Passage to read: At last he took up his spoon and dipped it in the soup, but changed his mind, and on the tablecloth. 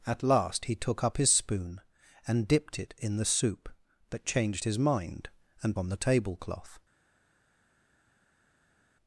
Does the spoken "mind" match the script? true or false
true